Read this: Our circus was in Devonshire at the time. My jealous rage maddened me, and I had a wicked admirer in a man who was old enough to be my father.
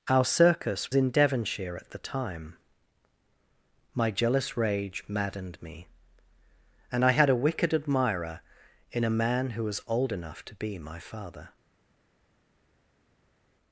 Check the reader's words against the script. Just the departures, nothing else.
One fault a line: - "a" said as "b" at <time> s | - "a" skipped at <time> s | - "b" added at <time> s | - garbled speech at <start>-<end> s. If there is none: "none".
- "was" skipped at 0.9 s